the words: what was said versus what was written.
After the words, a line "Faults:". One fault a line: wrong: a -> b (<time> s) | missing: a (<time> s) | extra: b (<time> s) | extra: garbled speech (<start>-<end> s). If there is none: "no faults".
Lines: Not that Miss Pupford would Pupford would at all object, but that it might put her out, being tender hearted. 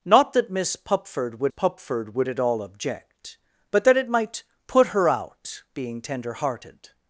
Not that Miss Pupford would Pupford would at all object, but that it might put her out, being tender hearted.
Faults:
no faults